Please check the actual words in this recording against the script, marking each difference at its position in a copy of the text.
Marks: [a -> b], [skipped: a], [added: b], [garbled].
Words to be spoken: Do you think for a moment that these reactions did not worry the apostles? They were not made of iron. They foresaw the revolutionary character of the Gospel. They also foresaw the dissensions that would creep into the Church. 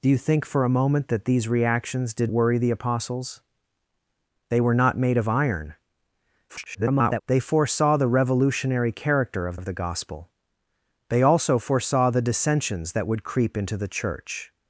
Do you think for a moment that these reactions did [skipped: not] worry the apostles? They were not made of iron. [garbled] They foresaw the revolutionary character of [added: of] the Gospel. They also foresaw the dissensions that would creep into the Church.